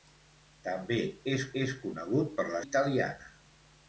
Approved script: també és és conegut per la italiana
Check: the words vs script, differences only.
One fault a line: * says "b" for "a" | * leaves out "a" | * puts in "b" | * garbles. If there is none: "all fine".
all fine